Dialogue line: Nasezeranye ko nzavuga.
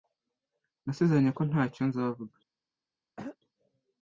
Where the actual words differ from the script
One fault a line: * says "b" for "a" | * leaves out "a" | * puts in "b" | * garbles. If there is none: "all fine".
* puts in "ntacyo"